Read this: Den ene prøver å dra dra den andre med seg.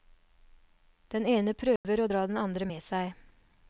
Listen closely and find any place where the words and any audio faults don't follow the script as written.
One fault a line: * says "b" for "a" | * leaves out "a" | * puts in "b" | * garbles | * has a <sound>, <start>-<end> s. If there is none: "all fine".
* has a dropout, 1.8-1.8 s
* leaves out "dra"